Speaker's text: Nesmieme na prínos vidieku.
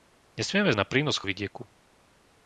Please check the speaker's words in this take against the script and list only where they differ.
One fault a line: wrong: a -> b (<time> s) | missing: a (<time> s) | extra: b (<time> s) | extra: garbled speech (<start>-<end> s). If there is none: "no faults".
no faults